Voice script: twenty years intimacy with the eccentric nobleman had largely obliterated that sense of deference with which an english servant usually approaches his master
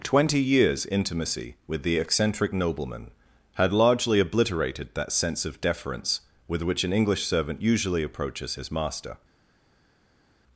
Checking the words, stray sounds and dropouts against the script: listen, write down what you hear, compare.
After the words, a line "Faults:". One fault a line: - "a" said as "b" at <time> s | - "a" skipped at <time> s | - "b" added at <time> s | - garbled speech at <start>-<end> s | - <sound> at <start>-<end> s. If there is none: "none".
twenty years intimacy with the eccentric nobleman had largely obliterated that sense of deference with which an english servant usually approaches his master
Faults:
none